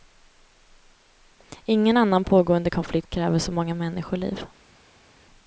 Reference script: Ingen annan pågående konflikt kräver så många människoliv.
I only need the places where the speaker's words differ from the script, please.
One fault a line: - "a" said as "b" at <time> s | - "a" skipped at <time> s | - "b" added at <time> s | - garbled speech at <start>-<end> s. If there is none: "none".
none